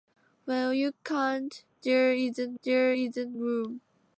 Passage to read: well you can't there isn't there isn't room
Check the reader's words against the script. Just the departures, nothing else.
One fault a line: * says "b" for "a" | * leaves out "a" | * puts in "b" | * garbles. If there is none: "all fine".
all fine